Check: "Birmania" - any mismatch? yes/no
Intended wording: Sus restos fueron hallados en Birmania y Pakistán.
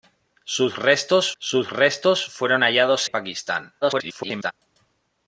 yes